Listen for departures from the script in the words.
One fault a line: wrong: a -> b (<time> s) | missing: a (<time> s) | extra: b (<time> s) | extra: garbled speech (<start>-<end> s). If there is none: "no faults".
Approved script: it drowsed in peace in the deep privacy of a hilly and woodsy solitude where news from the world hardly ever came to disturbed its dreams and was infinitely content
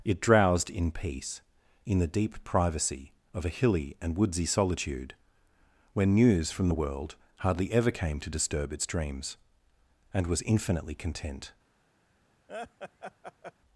wrong: disturbed -> disturb (8.3 s)